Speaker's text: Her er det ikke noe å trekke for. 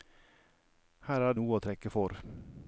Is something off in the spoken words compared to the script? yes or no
yes